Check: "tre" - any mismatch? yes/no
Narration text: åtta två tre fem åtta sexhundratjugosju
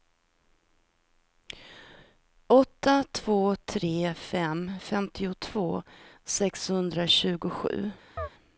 no